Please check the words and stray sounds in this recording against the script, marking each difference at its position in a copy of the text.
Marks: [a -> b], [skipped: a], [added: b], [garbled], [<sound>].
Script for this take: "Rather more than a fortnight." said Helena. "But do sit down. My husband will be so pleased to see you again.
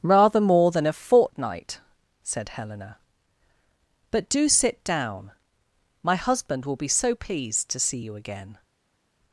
"Rather more than a fortnight." said Helena. "But do sit down. My husband will be so pleased to see you again.